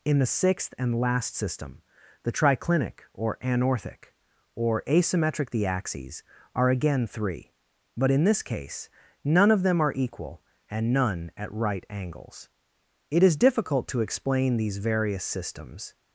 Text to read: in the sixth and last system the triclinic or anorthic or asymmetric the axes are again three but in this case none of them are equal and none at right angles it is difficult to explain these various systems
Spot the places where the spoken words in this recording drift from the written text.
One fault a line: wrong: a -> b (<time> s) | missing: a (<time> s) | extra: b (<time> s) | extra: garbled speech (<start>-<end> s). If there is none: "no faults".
no faults